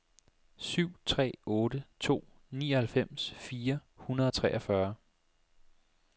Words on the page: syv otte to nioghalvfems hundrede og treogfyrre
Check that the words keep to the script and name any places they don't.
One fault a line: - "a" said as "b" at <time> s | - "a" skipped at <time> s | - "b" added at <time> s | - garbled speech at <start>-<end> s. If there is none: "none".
- "tre" added at 1.1 s
- "fire" added at 3.3 s